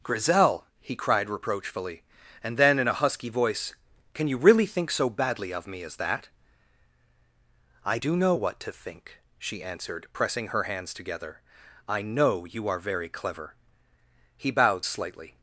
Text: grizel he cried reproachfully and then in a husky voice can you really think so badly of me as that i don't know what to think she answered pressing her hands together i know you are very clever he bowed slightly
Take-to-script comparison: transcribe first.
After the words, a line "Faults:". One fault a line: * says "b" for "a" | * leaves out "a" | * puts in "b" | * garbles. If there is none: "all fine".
grizel he cried reproachfully and then in a husky voice can you really think so badly of me as that i do know what to think she answered pressing her hands together i know you are very clever he bowed slightly
Faults:
* says "do" for "don't"